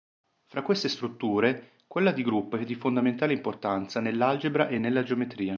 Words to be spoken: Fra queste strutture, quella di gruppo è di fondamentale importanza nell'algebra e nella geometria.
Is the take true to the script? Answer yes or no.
yes